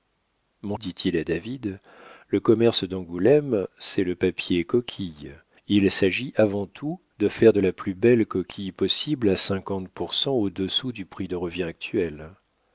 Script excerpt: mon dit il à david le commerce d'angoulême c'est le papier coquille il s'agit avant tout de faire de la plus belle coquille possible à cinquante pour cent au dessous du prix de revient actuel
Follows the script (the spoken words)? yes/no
yes